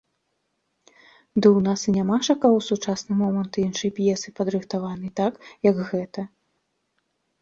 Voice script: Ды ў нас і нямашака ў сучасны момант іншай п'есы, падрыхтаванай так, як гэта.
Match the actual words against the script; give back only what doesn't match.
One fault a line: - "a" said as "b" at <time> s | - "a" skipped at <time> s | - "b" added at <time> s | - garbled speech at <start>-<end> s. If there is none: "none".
none